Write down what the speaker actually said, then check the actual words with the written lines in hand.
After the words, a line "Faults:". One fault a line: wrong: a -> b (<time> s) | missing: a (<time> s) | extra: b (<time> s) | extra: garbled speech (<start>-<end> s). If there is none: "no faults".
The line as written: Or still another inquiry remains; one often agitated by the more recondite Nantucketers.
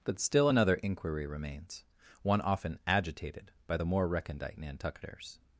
But still another inquiry remains; one often agitated by the more recondite Nantucketers.
Faults:
wrong: Or -> But (0.0 s)